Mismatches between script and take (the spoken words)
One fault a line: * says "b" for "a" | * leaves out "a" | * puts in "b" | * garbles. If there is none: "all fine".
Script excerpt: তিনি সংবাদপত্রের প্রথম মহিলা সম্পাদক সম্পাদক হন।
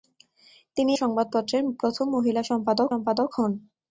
all fine